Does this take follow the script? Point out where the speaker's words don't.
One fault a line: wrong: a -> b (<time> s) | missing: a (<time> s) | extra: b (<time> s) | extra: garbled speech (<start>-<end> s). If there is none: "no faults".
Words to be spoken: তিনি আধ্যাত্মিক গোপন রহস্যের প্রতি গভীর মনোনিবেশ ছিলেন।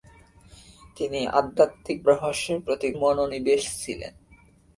missing: গোপন (2.0 s)
missing: গভীর (2.9 s)